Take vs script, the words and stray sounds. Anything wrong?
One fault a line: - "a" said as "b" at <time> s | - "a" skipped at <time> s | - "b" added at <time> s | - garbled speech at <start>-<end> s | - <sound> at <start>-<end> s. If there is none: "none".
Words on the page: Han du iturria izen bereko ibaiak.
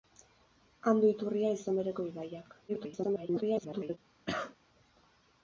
- garbled speech at 2.7-4.0 s
- cough at 4.3-4.6 s